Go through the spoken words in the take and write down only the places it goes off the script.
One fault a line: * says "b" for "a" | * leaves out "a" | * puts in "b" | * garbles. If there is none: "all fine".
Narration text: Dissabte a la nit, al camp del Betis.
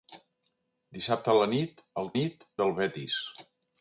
* says "nit" for "camp"